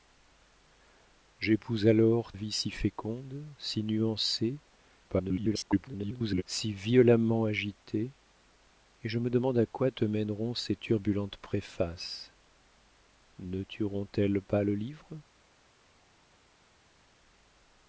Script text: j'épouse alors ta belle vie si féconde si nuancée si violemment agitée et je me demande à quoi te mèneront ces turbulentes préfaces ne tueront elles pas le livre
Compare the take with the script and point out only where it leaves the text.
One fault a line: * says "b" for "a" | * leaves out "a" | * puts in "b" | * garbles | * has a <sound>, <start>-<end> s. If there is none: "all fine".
* leaves out "ta belle"
* garbles